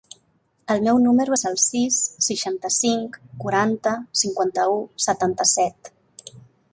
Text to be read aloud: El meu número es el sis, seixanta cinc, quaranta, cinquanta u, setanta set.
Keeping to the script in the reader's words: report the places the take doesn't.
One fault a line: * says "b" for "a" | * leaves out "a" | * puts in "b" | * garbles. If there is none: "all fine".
all fine